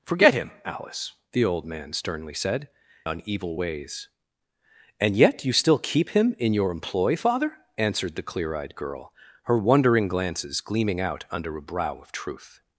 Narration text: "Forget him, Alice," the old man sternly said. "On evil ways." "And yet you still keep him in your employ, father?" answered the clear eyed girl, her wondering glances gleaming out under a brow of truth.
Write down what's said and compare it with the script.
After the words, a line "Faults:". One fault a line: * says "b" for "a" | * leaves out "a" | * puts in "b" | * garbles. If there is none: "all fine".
"Forget him, Alice," the old man sternly said. "On evil ways." "And yet you still keep him in your employ, father?" answered the clear eyed girl, her wondering glances gleaming out under a brow of truth.
Faults:
all fine